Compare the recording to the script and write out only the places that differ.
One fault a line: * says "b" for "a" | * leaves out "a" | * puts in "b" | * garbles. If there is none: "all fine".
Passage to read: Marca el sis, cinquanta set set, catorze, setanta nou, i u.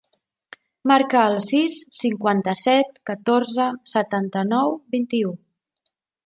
* leaves out "set"
* puts in "vint"